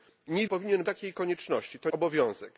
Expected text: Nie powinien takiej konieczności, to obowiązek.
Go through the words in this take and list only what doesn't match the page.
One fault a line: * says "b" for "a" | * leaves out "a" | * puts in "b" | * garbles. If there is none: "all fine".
all fine